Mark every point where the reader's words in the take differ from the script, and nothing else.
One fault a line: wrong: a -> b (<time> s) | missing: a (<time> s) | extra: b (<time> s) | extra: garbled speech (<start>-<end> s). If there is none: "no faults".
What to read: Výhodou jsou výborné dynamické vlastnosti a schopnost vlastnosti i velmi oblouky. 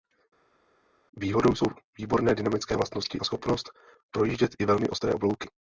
wrong: vlastnosti -> projíždět (4.1 s)
extra: ostré (4.9 s)